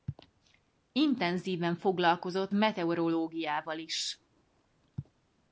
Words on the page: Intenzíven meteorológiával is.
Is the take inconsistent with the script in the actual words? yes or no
yes